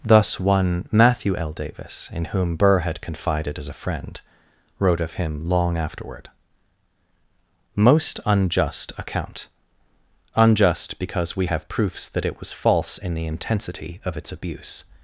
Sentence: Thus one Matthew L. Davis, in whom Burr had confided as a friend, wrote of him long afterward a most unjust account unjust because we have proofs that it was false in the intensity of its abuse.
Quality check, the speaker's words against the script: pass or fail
fail